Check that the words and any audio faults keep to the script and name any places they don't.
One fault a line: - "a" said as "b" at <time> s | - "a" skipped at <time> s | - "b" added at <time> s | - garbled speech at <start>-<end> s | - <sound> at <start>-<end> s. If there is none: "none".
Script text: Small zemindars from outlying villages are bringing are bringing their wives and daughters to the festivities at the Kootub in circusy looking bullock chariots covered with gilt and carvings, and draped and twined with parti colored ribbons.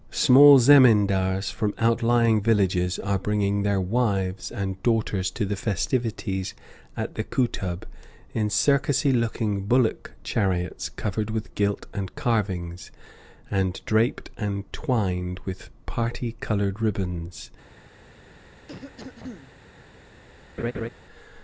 - "are bringing" skipped at 3.6 s
- cough at 18.7-19.5 s
- laugh at 20.6-20.9 s